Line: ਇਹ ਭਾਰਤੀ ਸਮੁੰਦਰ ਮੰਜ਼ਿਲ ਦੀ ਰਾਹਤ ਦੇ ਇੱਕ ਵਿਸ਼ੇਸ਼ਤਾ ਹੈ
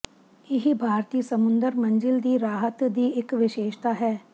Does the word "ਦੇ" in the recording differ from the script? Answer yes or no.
yes